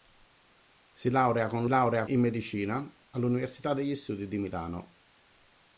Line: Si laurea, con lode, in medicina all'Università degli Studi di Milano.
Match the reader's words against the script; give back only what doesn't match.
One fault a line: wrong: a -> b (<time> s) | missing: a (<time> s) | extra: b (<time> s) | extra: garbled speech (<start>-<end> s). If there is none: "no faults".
wrong: lode -> laurea (1.7 s)